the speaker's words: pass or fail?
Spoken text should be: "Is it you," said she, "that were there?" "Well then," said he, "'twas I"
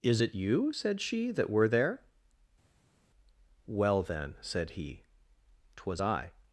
pass